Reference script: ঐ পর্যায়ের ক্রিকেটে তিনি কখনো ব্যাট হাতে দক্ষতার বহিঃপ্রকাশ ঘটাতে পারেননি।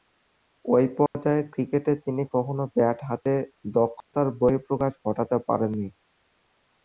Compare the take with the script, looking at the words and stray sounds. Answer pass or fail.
fail